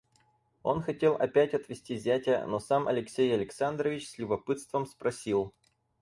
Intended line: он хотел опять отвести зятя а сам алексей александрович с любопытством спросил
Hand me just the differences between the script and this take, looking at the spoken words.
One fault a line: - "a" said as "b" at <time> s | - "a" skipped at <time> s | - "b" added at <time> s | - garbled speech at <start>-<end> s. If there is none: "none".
- "а" said as "но" at 2.5 s